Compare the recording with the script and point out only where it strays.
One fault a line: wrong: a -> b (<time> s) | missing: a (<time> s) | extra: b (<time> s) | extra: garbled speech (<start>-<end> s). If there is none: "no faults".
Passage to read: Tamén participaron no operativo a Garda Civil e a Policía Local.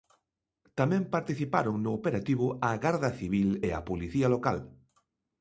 no faults